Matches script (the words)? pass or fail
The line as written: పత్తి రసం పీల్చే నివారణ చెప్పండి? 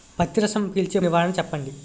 pass